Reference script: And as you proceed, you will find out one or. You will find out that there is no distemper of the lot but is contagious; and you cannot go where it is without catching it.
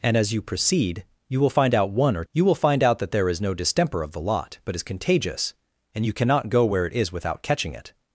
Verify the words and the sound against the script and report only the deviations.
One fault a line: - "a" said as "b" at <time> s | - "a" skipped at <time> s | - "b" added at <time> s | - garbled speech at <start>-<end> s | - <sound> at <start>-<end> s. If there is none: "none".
none